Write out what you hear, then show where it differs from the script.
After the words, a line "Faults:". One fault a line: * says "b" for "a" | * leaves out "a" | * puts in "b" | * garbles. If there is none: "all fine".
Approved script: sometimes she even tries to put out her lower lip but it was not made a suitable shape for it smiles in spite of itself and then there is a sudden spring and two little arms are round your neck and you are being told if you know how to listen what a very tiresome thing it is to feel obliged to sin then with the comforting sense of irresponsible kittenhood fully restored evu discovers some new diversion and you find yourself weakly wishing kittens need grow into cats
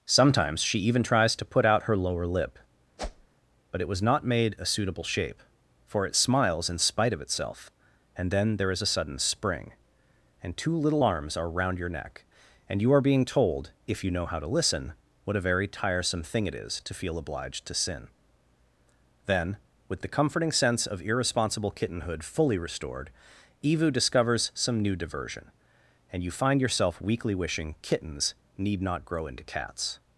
sometimes she even tries to put out her lower lip but it was not made a suitable shape for it smiles in spite of itself and then there is a sudden spring and two little arms are round your neck and you are being told if you know how to listen what a very tiresome thing it is to feel obliged to sin then with the comforting sense of irresponsible kittenhood fully restored evu discovers some new diversion and you find yourself weakly wishing kittens need not grow into cats
Faults:
* puts in "not"